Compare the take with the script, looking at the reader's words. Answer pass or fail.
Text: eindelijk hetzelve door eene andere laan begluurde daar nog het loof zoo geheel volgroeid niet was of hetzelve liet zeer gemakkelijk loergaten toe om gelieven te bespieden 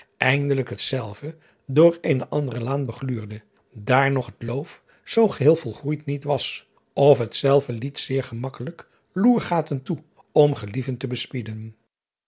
pass